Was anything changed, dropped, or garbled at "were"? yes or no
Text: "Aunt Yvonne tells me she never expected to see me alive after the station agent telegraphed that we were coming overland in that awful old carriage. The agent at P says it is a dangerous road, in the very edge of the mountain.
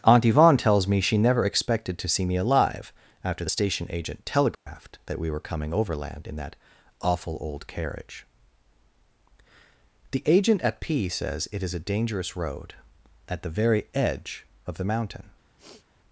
no